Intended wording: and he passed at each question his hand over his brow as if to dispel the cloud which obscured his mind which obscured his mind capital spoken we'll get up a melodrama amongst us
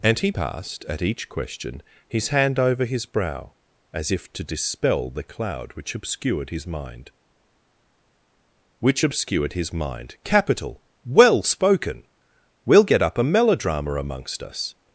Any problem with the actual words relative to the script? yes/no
yes